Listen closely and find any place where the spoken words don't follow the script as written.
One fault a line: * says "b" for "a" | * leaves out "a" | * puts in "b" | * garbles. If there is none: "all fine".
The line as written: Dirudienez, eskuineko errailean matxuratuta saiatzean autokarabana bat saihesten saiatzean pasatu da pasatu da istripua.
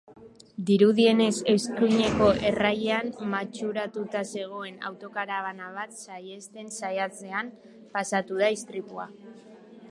* says "zegoen" for "saiatzean"
* leaves out "pasatu da"